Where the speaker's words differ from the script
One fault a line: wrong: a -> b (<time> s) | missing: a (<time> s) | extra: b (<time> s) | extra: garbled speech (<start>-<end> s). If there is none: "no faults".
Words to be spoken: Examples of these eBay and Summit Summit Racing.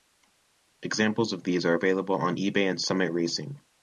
extra: are available on (1.6 s)
missing: Summit (3.1 s)